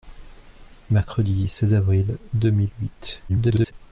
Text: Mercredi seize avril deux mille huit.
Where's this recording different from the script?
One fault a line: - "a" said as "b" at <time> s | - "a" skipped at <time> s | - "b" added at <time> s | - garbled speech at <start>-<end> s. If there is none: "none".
- garbled speech at 3.3-3.7 s